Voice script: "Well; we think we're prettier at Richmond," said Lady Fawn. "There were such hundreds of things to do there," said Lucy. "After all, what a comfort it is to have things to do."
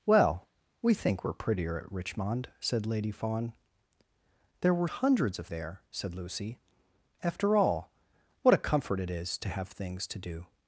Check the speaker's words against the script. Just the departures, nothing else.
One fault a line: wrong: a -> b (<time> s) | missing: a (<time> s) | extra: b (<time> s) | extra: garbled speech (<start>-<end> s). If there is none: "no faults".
extra: at (1.8 s)
missing: such (4.9 s)
missing: things to do (5.5 s)